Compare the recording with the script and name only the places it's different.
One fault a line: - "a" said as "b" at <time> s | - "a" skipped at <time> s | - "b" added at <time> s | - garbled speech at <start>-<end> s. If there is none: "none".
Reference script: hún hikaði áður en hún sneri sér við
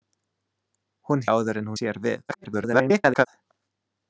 - "hikaði" skipped at 1.2 s
- "hún sneri" skipped at 1.7 s
- garbled speech at 2.3-3.3 s